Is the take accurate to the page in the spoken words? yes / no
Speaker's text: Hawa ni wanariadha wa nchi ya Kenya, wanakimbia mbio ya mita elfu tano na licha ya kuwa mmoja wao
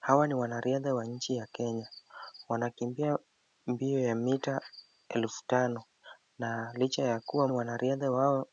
no